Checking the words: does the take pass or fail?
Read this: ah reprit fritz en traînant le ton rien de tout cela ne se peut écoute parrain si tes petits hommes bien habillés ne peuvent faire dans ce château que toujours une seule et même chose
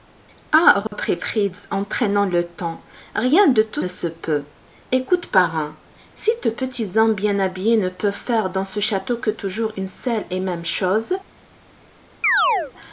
fail